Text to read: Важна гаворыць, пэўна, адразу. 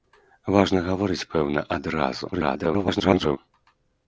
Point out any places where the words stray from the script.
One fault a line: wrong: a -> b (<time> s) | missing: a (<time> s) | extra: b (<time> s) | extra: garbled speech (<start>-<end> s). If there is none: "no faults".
extra: garbled speech (2.3-3.4 s)